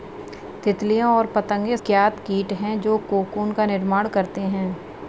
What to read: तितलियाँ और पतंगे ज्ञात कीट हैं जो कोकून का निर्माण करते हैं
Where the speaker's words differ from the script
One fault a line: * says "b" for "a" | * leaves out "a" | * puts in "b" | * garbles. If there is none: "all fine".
all fine